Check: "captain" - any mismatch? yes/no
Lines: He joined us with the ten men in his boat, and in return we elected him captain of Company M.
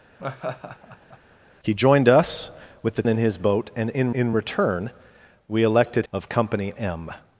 yes